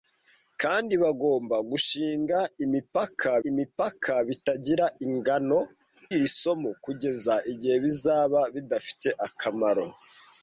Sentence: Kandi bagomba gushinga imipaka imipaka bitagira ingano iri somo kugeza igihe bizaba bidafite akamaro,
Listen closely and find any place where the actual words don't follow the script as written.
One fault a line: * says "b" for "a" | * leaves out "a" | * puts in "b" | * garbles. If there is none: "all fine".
all fine